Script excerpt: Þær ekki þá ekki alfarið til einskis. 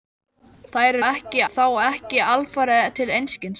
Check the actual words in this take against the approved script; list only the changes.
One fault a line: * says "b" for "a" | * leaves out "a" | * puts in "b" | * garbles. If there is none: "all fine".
all fine